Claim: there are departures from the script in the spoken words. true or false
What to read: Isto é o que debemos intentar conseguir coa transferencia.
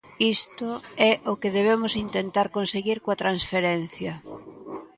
false